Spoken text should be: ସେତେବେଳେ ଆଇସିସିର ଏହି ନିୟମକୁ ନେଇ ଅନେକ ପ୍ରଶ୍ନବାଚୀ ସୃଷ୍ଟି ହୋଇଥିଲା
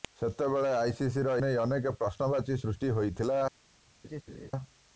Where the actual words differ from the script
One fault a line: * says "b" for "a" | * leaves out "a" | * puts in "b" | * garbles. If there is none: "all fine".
* leaves out "ଏହି ନିୟମକୁ"